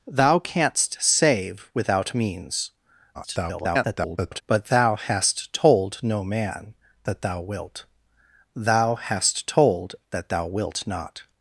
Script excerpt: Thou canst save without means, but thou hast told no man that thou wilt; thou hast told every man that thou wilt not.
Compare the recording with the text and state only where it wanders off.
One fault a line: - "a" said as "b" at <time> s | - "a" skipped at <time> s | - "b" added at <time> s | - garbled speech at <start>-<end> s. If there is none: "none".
- garbled speech at 3.1-4.4 s
- "every man" skipped at 9.9 s